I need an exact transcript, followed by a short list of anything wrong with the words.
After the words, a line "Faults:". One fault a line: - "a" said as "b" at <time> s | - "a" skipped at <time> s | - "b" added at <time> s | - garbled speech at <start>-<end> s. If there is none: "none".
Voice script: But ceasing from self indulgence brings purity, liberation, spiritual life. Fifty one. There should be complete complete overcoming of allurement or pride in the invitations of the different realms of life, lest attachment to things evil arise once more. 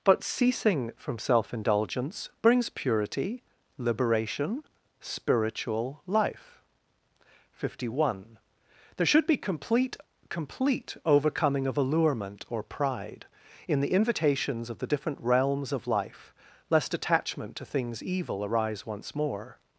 But ceasing from self indulgence brings purity, liberation, spiritual life. Fifty one. There should be complete complete overcoming of allurement or pride in the invitations of the different realms of life, lest attachment to things evil arise once more.
Faults:
none